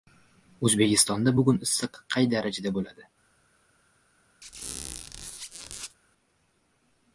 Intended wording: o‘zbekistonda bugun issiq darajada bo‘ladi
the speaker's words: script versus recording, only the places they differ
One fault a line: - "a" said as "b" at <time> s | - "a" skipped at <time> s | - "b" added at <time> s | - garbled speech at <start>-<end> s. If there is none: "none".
- "qay" added at 2.2 s